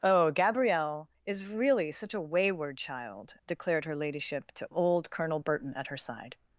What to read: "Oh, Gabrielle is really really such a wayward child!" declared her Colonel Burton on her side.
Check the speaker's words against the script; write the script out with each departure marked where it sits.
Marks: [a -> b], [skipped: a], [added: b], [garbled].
"Oh, Gabrielle is really [skipped: really] such a wayward child!" declared her [added: ladyship to old] Colonel Burton [on -> at] her side.